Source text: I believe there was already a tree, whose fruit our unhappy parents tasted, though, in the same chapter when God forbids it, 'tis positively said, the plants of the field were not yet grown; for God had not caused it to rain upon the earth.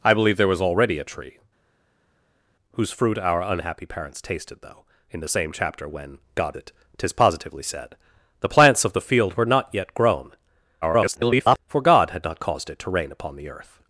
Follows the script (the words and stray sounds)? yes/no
no